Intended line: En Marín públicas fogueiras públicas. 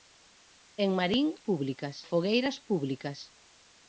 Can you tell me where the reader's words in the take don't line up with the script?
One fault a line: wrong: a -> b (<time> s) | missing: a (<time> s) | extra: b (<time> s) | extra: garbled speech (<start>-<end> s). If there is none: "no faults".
no faults